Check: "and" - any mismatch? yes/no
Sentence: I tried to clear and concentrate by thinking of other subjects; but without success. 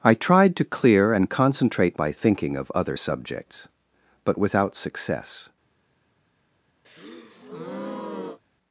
no